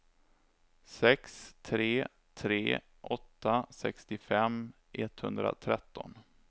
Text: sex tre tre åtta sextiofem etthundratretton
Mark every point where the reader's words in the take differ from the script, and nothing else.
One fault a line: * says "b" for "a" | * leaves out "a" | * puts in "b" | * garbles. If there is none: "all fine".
all fine